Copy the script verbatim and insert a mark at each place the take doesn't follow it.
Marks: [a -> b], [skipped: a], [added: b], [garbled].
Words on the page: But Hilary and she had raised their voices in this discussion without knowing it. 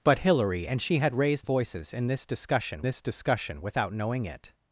But Hilary and she had raised [skipped: their] voices in this discussion [added: this discussion] without knowing it.